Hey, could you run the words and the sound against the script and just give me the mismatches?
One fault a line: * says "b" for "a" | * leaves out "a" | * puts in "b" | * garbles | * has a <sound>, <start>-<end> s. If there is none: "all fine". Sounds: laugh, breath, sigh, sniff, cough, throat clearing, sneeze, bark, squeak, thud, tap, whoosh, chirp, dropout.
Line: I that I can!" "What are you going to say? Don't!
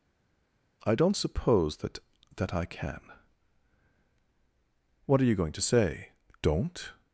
* puts in "don't suppose that"